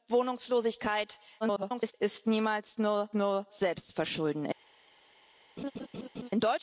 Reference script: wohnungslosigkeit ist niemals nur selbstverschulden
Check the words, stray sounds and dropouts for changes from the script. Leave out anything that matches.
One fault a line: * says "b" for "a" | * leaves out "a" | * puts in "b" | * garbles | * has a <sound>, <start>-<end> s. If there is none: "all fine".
* garbles
* puts in "nur"
* has a laugh, 5.6-6.3 s